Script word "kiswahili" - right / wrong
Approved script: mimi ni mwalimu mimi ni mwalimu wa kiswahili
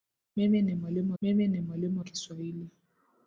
right